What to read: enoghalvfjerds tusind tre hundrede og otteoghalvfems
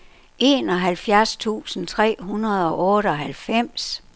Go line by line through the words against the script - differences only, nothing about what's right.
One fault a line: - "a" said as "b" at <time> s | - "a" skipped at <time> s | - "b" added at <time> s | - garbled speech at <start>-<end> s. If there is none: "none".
none